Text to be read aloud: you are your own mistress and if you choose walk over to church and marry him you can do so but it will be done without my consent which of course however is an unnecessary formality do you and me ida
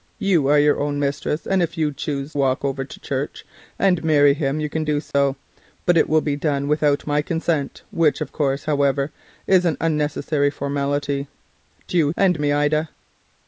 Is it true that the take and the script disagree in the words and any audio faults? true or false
true